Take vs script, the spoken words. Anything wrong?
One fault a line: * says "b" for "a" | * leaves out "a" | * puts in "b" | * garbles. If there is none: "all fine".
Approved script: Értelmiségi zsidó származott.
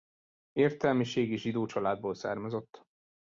* puts in "családból"